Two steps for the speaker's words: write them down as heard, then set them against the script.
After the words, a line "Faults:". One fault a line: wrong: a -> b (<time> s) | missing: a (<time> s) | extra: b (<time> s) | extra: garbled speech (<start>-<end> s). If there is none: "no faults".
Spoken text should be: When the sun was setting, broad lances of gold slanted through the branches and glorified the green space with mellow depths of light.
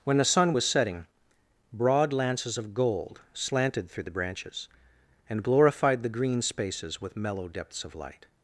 When the sun was setting, broad lances of gold slanted through the branches and glorified the green spaces with mellow depths of light.
Faults:
wrong: space -> spaces (6.4 s)